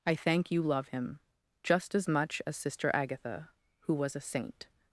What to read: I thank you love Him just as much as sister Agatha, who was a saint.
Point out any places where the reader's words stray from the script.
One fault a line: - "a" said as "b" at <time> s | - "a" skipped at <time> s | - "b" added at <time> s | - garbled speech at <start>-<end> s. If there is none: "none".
none